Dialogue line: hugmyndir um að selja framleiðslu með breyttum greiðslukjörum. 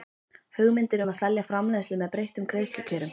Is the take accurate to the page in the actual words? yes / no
yes